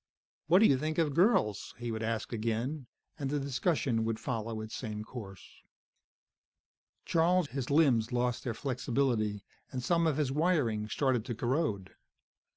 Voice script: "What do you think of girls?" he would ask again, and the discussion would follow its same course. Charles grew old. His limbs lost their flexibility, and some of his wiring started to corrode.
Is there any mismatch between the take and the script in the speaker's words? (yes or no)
yes